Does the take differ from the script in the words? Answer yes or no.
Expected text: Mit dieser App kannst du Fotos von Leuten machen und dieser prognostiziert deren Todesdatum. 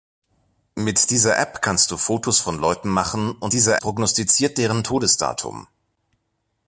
no